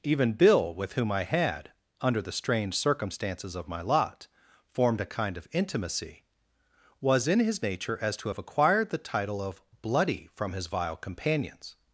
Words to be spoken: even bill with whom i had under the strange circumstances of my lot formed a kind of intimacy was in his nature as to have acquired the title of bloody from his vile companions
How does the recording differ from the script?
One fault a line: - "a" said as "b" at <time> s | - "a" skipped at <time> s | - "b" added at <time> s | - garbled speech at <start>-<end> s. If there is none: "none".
none